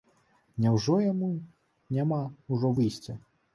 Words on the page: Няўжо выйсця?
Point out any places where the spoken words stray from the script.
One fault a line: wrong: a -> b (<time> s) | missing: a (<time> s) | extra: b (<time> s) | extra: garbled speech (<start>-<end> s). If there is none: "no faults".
extra: яму няма ўжо (1.1 s)